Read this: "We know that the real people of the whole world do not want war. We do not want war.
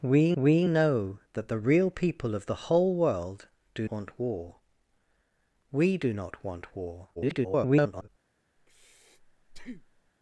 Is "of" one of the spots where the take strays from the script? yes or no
no